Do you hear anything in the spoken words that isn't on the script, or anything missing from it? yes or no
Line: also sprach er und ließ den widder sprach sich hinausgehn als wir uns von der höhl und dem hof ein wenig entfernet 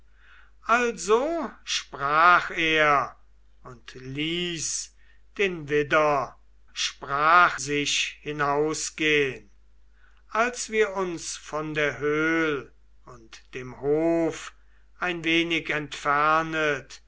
no